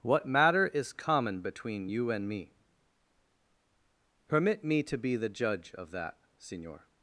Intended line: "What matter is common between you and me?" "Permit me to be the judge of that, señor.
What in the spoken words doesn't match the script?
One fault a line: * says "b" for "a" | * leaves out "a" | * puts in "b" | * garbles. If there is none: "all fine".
all fine